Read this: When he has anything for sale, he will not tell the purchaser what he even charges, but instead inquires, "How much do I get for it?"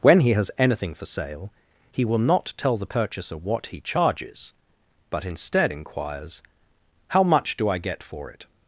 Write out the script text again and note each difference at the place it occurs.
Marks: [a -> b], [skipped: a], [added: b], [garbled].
When he has anything for sale, he will not tell the purchaser what he [skipped: even] charges, but instead inquires, "How much do I get for it?"